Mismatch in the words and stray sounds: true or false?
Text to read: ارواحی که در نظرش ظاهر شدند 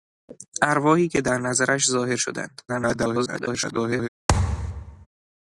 true